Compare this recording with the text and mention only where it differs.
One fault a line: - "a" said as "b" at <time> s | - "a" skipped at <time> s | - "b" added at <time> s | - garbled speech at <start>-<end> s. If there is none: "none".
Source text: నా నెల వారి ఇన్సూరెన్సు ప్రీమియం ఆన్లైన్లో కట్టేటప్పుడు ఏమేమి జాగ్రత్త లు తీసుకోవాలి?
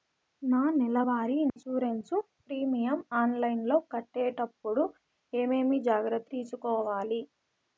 - "లు" skipped at 6.3 s